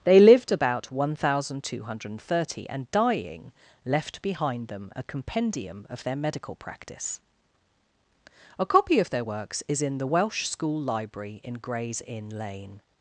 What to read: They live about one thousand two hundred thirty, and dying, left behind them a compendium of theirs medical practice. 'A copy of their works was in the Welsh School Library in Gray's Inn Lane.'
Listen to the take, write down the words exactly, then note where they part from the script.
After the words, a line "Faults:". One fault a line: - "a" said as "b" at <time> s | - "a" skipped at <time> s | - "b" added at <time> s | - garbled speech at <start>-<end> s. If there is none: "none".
They lived about one thousand two hundred thirty, and dying, left behind them a compendium of their medical practice. 'A copy of their works is in the Welsh School Library in Gray's Inn Lane.'
Faults:
- "live" said as "lived" at 0.2 s
- "theirs" said as "their" at 6.0 s
- "was" said as "is" at 9.7 s